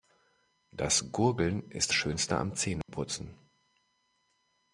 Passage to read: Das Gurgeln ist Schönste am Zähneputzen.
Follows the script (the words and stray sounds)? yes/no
no